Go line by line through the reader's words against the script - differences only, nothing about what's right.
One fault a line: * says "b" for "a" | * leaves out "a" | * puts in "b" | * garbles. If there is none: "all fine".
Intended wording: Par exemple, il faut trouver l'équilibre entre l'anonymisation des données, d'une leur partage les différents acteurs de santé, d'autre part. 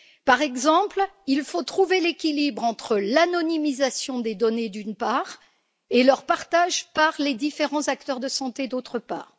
* puts in "part et"
* puts in "par"